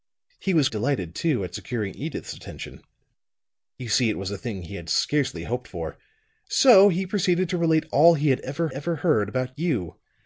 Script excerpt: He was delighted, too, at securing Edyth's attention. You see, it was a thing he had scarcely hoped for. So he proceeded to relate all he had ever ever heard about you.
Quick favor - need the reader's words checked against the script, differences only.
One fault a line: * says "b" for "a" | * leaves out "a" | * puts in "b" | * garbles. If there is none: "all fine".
all fine